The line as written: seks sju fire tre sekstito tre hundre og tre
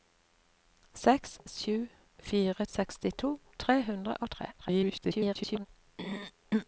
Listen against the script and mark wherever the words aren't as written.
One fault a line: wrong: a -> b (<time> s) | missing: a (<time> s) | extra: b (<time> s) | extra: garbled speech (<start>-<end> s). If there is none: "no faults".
missing: tre (2.6 s)
extra: garbled speech (4.6-5.7 s)